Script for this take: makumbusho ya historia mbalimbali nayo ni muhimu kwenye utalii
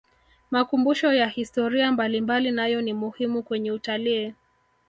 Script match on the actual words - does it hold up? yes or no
yes